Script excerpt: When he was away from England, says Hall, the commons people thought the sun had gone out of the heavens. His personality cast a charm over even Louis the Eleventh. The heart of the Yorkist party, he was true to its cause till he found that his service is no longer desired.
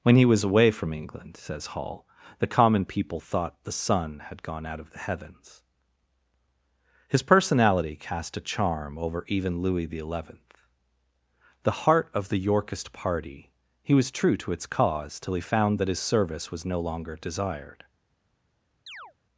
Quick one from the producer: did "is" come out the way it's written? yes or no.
no